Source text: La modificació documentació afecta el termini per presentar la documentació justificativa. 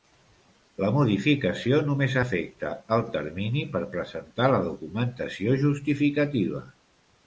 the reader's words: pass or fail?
fail